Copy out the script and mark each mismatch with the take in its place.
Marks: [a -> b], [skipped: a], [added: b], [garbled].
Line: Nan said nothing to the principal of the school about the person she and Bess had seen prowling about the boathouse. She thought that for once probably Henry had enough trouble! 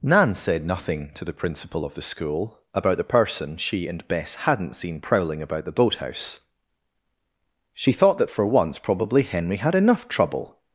Nan said nothing to the principal of the school about the person she and Bess [had -> hadn't] seen prowling about the boathouse. She thought that for once probably Henry had enough trouble!